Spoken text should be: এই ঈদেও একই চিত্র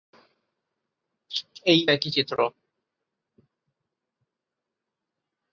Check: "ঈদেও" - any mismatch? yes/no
yes